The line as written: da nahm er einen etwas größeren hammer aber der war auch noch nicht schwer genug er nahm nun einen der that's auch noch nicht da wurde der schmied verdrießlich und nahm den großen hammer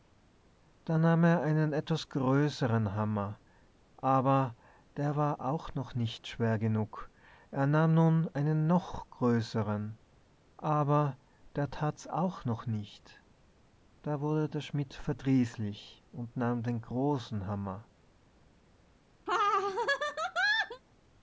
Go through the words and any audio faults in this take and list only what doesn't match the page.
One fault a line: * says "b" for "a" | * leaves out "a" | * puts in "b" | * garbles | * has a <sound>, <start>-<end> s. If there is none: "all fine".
* puts in "noch größeren aber"
* has a laugh, 19.3-20.8 s